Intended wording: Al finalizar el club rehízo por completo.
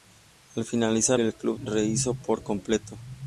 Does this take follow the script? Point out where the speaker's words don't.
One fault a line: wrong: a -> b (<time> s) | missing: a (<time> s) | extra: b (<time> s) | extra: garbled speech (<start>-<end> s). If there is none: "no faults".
no faults